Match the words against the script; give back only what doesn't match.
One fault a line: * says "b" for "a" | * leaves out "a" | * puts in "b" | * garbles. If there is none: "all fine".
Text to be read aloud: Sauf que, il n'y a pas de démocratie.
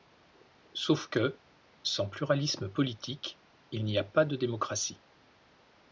* puts in "sans pluralisme politique"